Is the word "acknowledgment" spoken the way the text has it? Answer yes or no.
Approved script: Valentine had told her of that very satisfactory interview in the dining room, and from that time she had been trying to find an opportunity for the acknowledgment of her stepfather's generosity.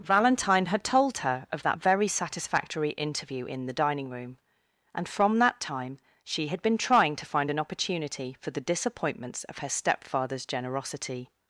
no